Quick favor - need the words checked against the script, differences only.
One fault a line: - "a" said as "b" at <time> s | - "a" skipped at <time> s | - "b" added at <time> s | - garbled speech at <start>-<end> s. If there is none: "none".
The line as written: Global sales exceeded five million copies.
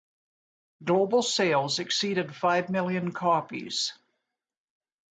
none